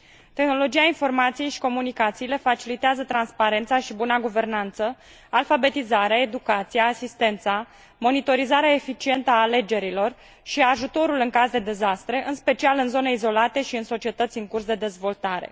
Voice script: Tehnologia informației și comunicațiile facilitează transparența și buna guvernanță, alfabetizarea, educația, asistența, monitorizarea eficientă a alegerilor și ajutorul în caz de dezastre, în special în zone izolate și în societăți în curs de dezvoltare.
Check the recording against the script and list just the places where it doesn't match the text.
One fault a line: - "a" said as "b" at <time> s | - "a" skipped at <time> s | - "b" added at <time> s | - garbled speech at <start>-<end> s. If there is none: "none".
none